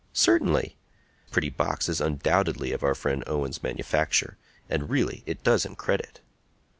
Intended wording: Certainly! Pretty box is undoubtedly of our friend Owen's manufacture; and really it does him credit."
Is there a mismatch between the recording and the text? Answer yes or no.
no